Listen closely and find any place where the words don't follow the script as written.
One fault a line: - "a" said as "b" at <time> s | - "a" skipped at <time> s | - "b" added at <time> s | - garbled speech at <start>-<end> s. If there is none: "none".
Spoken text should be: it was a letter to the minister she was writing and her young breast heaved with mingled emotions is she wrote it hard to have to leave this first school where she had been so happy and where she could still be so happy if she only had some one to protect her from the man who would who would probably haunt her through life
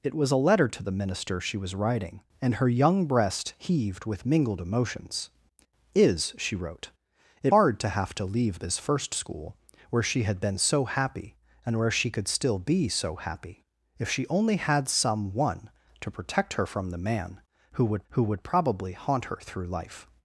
none